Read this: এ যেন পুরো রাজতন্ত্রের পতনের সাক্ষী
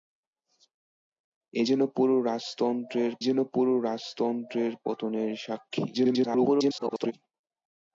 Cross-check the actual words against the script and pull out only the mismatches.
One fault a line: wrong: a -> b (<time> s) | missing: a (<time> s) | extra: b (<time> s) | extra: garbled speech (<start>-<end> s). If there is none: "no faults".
extra: যেন পুরো রাজতন্ত্রের (3.2 s)
extra: garbled speech (5.9-7.1 s)